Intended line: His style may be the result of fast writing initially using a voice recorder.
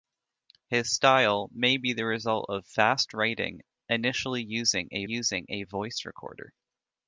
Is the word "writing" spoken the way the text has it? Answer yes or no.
yes